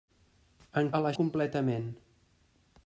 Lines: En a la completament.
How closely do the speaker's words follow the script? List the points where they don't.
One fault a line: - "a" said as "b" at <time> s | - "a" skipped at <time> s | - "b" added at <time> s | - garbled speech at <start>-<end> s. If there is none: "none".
none